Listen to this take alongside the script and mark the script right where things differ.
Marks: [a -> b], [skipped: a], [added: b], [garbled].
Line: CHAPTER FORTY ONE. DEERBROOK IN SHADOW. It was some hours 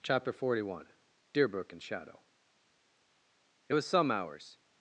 CHAPTER FORTY ONE. DEERBROOK IN SHADOW. It was some hours